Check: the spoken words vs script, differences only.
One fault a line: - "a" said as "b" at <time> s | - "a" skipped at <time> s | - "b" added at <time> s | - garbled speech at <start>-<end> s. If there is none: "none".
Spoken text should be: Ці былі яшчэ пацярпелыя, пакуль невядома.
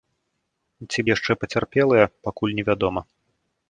- "былі" skipped at 1.0 s